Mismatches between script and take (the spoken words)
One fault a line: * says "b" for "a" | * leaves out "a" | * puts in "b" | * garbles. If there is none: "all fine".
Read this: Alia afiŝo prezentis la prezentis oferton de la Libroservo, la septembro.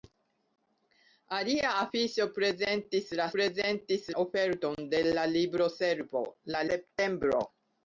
all fine